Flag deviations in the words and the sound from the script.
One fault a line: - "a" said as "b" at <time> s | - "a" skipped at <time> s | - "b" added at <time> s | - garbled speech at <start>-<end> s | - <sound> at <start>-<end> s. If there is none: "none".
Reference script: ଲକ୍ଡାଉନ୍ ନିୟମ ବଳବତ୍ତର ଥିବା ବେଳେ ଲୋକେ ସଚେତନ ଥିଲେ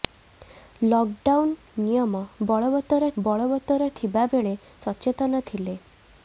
- "ବଳବତ୍ତର" added at 3.2 s
- "ଲୋକେ" skipped at 4.6 s